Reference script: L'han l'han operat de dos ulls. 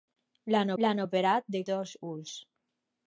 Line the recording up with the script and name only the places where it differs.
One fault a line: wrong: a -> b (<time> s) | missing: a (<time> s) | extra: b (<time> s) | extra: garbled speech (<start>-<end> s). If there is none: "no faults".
no faults